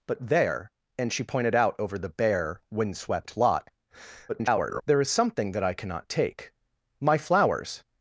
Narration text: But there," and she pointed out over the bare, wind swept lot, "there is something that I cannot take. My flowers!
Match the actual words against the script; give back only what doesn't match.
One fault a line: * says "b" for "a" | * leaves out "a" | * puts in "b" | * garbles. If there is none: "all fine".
* garbles